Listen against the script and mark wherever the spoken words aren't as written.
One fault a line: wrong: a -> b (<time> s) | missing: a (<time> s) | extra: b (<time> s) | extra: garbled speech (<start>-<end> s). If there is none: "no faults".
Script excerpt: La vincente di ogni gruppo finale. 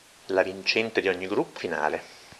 no faults